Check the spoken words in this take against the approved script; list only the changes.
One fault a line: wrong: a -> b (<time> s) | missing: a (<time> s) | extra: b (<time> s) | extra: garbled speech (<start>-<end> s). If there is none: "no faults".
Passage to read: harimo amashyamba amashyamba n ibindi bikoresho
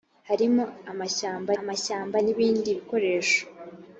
no faults